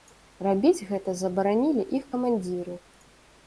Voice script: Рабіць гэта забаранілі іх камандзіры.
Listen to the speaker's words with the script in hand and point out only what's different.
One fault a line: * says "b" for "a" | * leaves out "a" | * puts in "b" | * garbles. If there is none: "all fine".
all fine